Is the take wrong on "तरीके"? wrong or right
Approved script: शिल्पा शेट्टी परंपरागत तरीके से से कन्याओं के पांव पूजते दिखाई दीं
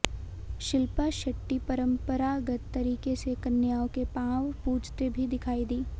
right